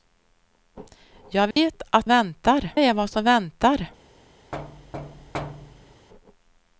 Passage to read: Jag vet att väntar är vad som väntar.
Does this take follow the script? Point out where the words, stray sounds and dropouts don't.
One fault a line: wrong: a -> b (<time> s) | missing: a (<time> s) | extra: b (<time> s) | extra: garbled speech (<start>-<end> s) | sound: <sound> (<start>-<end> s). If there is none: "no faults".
sound: dropout (1.5-1.6 s)
sound: thud (4.5-6.1 s)